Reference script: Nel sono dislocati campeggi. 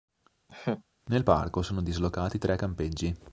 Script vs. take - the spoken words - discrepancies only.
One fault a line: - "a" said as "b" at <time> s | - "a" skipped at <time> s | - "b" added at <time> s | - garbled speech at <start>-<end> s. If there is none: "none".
- "parco" added at 1.2 s
- "tre" added at 2.4 s